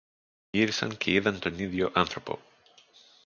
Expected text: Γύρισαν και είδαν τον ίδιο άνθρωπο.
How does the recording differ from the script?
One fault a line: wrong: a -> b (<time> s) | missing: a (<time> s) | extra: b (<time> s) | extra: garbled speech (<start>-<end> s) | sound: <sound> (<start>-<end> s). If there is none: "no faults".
no faults